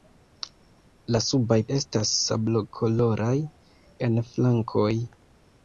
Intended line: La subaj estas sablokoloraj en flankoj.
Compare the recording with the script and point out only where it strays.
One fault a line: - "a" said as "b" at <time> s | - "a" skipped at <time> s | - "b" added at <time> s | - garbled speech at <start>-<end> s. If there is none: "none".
none